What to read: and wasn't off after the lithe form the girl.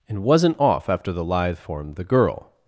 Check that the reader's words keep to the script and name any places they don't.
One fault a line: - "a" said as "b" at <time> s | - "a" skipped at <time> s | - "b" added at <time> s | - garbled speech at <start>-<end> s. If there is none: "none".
none